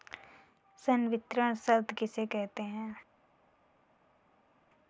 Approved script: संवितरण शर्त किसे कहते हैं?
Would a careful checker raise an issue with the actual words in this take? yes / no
no